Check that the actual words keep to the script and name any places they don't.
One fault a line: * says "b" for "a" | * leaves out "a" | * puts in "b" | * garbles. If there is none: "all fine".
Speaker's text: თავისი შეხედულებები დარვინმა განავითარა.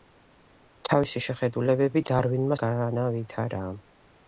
all fine